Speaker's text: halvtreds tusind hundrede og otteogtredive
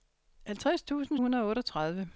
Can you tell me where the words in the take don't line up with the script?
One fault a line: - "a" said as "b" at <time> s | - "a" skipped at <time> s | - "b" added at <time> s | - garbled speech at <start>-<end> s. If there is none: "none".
none